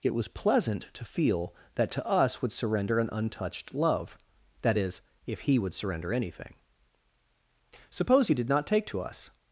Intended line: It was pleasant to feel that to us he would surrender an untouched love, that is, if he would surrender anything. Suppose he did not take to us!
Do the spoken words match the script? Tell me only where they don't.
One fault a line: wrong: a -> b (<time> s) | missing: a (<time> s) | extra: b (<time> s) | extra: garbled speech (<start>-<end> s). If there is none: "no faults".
missing: he (2.4 s)